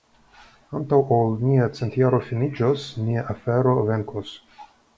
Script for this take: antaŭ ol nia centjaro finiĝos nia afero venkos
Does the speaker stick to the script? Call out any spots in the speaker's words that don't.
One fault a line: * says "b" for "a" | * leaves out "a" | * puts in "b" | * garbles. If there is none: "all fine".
all fine